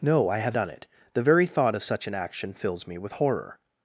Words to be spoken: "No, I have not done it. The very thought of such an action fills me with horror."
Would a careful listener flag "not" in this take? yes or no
yes